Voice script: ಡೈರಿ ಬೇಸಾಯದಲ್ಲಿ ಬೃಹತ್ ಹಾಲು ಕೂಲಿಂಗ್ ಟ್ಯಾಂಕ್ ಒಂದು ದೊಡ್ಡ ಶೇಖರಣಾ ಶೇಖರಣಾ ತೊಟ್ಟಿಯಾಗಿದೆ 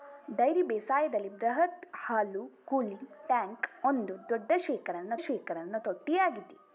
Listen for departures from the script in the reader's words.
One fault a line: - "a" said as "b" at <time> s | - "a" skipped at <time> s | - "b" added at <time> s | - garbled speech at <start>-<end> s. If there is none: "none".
none